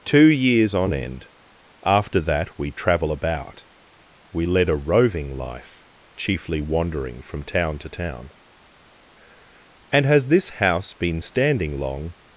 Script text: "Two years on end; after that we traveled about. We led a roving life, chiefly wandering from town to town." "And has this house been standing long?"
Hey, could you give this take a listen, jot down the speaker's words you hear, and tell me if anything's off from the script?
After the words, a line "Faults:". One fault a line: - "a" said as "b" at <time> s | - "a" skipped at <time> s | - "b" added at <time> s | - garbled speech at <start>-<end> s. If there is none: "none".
"Two years on end; after that we travel about. We led a roving life, chiefly wandering from town to town." "And has this house been standing long?"
Faults:
- "traveled" said as "travel" at 2.7 s